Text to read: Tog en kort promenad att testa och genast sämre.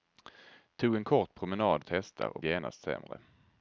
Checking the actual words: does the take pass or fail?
pass